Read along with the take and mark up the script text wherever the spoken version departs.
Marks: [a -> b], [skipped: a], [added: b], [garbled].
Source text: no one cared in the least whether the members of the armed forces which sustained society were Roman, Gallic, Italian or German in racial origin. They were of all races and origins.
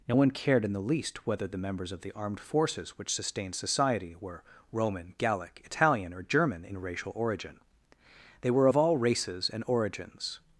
no one cared in the least whether the members of the armed forces which sustained society were Roman, Gallic, Italian or German in racial origin. They were of all races and origins.